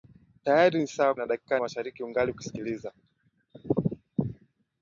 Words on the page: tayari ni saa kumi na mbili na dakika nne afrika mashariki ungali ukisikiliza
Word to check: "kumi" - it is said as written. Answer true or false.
false